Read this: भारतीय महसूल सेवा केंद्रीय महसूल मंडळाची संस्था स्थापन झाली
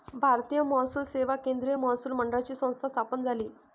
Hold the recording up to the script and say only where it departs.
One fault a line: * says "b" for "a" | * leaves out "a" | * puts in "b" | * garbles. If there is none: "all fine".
all fine